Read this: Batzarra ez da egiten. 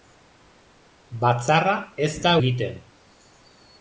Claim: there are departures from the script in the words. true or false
false